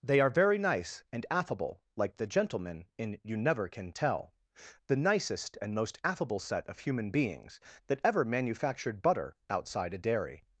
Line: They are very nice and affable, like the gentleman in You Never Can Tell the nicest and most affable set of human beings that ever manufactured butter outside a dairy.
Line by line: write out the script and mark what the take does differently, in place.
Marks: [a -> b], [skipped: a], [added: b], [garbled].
They are very nice and affable, like the gentleman in You Never Can Tell the nicest and most affable set of human beings that ever manufactured butter outside a dairy.